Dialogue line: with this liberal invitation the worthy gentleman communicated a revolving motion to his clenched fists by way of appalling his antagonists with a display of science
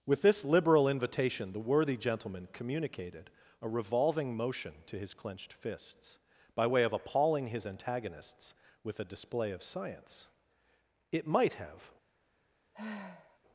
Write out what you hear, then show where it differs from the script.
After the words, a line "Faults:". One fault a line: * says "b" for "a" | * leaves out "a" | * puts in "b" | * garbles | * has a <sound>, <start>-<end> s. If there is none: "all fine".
with this liberal invitation the worthy gentleman communicated a revolving motion to his clenched fists by way of appalling his antagonists with a display of science it might have
Faults:
* puts in "it might have"
* has a sigh, 12.7-13.4 s